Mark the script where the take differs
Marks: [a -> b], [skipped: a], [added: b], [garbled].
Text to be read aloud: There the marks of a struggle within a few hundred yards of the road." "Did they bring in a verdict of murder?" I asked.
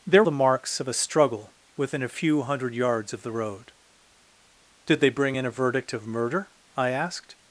There the marks of a struggle within a few hundred yards of the road." "Did they bring in a verdict of murder?" I asked.